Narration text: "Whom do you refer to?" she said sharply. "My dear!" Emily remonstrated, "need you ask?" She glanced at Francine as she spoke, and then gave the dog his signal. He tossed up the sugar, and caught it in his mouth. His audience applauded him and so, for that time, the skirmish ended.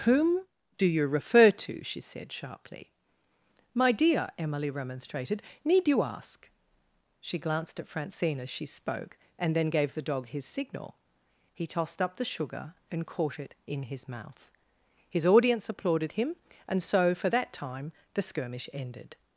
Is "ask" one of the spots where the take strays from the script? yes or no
no